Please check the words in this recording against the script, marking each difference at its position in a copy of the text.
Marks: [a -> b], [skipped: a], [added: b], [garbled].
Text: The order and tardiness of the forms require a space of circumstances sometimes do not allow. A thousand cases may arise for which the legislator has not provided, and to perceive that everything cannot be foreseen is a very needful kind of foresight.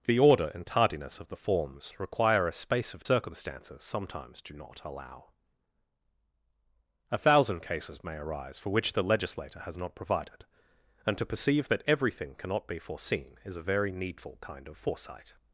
The order and tardiness of the forms require a space of circumstances sometimes do not allow. A thousand cases may arise for which the legislator has not provided, and to perceive that everything cannot be foreseen is a very needful kind of foresight.